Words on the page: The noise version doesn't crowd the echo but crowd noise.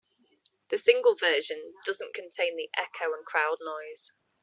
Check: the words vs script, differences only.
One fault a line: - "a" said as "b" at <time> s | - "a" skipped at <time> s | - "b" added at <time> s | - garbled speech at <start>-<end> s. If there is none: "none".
- "noise" said as "single" at 0.8 s
- "crowd" said as "contain" at 2.1 s
- "but" said as "and" at 3.1 s